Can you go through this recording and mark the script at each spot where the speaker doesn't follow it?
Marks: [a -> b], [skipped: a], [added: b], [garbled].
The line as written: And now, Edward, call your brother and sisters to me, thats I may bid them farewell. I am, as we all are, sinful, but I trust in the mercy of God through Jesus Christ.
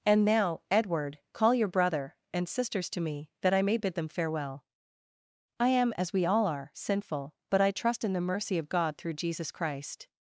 And now, Edward, call your brother and sisters to me, [thats -> that] I may bid them farewell. I am, as we all are, sinful, but I trust in the mercy of God through Jesus Christ.